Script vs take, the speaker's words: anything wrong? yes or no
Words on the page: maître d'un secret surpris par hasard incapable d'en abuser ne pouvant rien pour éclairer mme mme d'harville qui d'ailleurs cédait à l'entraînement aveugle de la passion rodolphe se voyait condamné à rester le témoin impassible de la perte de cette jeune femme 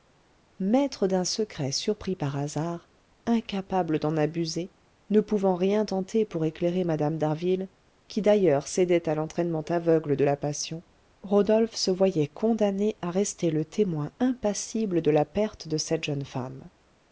yes